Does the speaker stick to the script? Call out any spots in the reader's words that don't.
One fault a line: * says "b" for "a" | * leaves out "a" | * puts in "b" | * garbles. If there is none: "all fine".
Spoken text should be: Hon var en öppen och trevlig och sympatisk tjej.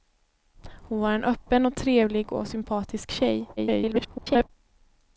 * garbles